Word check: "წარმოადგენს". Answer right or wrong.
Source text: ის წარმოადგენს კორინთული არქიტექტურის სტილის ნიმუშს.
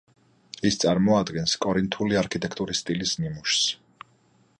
right